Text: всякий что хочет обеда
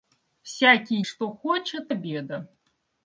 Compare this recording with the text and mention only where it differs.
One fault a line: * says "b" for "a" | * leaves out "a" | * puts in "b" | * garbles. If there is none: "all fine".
all fine